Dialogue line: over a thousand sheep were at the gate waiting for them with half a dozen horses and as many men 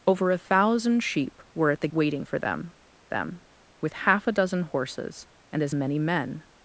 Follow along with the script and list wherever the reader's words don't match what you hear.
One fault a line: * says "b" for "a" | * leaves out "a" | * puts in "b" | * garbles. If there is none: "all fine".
* leaves out "gate"
* puts in "them"